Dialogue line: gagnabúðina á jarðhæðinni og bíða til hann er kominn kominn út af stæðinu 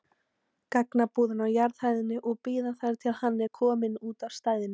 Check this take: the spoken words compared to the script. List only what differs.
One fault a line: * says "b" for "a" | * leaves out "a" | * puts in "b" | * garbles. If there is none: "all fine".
* puts in "þar"
* leaves out "kominn"